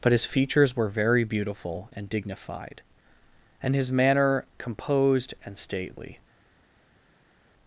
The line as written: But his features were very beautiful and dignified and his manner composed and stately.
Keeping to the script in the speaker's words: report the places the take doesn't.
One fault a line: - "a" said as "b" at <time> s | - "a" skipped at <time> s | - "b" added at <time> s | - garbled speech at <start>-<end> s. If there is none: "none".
none